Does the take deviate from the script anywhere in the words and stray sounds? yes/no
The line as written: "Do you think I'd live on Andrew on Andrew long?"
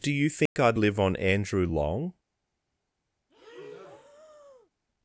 yes